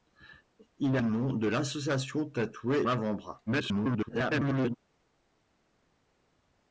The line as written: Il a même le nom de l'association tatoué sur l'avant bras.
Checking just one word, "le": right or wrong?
wrong